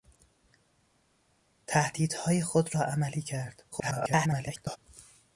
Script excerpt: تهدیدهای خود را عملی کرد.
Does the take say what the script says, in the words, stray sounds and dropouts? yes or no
no